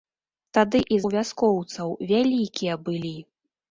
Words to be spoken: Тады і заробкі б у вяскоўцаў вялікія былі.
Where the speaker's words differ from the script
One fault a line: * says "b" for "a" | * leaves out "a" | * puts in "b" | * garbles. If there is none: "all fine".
* leaves out "заробкі б"